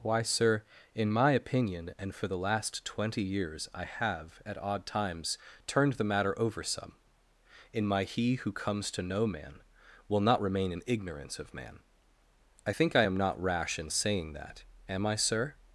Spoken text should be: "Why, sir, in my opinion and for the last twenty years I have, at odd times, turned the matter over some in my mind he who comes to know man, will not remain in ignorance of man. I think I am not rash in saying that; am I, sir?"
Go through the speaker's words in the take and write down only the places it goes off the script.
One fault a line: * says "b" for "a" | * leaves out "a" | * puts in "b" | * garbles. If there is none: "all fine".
* leaves out "mind"